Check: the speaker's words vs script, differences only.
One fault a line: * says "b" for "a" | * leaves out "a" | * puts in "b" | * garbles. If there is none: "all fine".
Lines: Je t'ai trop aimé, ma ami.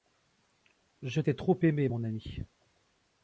* says "mon" for "ma"